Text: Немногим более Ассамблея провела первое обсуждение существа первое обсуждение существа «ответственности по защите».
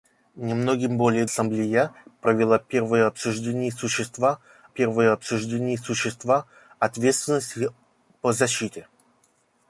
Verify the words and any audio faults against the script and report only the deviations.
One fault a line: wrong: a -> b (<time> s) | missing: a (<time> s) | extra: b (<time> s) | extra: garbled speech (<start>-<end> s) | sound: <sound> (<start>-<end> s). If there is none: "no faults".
no faults